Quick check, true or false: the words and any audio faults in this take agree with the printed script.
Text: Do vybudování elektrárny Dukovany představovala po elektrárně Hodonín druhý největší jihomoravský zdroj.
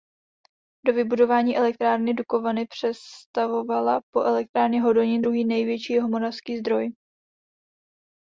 true